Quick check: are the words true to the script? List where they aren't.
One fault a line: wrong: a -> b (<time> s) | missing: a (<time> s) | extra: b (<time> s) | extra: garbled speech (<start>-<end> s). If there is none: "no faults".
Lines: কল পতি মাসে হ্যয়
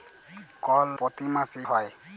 no faults